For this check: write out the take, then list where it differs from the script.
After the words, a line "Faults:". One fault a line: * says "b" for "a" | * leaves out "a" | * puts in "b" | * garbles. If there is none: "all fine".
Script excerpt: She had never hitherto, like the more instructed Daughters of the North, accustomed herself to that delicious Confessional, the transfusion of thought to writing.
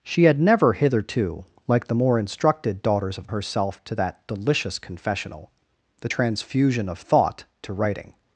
She had never hitherto, like the more instructed Daughters of herself to that delicious Confessional, the transfusion of thought to writing.
Faults:
* leaves out "the North accustomed"